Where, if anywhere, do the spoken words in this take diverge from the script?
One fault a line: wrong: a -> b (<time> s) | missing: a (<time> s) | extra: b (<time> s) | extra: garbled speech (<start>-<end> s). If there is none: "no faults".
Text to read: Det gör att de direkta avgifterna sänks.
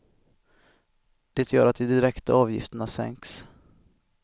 no faults